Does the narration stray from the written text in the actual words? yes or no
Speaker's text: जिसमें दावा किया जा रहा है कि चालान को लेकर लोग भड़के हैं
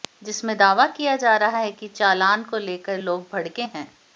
no